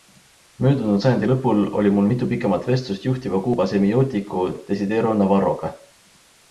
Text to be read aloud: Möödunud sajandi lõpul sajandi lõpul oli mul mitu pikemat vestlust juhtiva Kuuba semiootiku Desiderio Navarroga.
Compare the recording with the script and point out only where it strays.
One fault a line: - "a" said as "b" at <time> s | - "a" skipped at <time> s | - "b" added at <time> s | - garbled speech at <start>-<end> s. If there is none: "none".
- "sajandi lõpul" skipped at 1.6 s